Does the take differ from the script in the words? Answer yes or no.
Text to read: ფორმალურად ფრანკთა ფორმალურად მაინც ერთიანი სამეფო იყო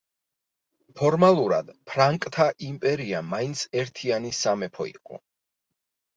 yes